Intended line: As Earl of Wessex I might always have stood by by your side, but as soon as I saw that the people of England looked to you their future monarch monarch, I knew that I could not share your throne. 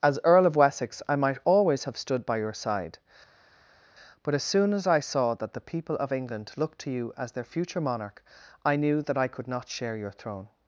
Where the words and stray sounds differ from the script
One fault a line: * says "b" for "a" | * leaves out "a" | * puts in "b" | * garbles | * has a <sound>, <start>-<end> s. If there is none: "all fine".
* leaves out "by"
* puts in "as"
* leaves out "monarch"